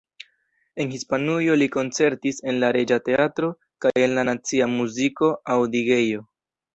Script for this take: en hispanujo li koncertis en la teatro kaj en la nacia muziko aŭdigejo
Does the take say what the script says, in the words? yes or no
no